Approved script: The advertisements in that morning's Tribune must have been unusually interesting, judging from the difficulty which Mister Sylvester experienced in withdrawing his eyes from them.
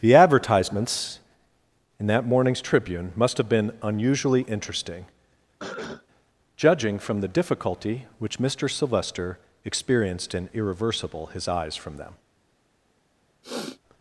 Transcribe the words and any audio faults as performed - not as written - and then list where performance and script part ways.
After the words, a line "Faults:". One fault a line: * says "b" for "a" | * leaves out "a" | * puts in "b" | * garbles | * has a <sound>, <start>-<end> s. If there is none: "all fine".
The advertisements in that morning's Tribune must have been unusually interesting, judging from the difficulty which Mister Sylvester experienced in irreversible his eyes from them.
Faults:
* has a cough, 5.6-6.1 s
* says "irreversible" for "withdrawing"
* has a sniff, 13.4-13.8 s